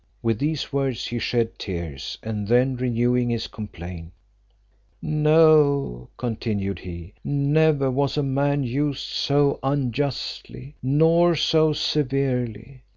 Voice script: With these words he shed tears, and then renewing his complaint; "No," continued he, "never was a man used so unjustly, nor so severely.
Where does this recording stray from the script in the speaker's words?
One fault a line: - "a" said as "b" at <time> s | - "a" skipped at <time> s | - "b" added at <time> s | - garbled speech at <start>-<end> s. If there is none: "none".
none